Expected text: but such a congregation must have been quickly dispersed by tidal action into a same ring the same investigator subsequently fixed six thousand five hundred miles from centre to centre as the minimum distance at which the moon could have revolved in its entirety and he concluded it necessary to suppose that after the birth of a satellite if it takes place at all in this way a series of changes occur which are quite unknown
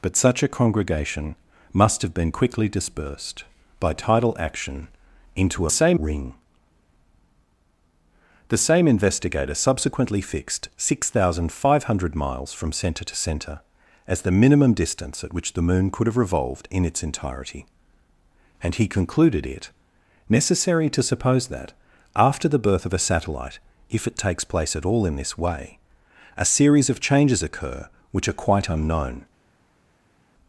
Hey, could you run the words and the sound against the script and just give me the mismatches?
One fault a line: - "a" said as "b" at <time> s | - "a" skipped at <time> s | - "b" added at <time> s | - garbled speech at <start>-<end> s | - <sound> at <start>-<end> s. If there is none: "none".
none